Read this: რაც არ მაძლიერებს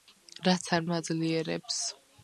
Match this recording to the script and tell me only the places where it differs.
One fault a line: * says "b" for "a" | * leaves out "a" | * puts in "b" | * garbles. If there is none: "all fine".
all fine